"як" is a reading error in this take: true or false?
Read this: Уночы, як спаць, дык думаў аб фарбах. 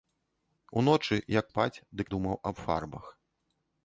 false